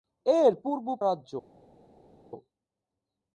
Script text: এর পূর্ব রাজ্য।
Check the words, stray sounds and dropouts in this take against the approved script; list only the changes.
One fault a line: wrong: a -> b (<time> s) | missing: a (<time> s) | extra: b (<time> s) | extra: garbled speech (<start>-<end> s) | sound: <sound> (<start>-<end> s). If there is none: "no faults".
no faults